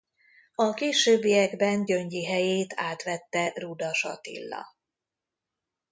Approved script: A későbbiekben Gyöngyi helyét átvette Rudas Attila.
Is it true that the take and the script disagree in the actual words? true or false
false